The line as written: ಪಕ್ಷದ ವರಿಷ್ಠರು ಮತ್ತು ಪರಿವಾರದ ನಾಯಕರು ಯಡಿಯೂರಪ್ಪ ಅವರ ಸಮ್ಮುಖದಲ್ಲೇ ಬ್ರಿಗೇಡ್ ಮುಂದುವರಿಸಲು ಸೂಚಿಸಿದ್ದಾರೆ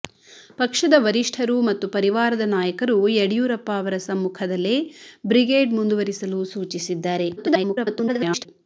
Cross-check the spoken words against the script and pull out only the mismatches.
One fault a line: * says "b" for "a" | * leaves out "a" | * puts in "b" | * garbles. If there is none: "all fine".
* garbles